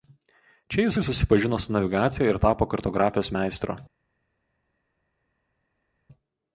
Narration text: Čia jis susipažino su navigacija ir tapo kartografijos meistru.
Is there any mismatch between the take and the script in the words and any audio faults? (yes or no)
yes